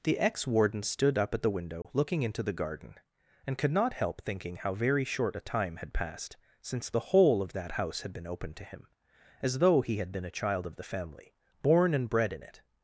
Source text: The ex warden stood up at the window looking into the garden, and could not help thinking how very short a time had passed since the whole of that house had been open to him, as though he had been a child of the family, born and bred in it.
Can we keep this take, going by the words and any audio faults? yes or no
no